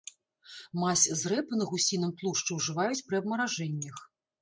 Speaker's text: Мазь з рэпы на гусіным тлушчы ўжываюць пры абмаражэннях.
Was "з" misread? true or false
false